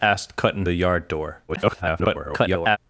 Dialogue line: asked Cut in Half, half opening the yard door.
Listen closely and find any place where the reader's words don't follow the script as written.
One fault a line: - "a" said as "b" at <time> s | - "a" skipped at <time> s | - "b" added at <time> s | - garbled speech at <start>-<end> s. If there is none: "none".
- "Half half opening" skipped at 0.7 s
- garbled speech at 1.5-2.8 s